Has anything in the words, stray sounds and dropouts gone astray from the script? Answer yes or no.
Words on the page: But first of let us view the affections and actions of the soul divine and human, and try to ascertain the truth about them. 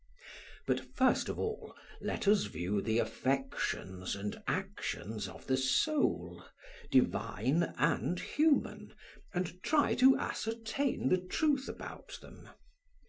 yes